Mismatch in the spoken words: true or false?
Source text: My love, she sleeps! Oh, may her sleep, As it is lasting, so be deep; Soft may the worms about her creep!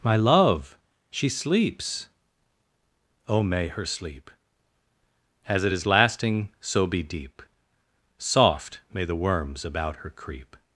false